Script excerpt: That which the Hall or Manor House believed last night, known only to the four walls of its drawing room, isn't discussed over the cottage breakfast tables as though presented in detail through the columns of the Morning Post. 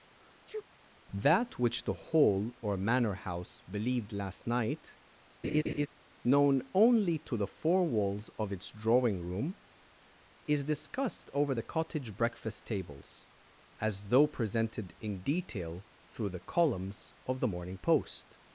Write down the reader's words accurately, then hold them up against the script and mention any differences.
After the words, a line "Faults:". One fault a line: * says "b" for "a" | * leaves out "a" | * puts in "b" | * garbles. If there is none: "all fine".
That which the Hall or Manor House believed last night, known only to the four walls of its drawing room, is discussed over the cottage breakfast tables as though presented in detail through the columns of the Morning Post.
Faults:
* says "is" for "isn't"